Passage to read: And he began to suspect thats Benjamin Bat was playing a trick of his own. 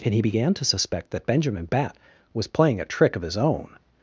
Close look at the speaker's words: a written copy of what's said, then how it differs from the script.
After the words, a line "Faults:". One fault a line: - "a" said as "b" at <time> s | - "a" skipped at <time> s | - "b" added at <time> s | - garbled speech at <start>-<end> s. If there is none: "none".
And he began to suspect that Benjamin Bat was playing a trick of his own.
Faults:
- "thats" said as "that" at 1.1 s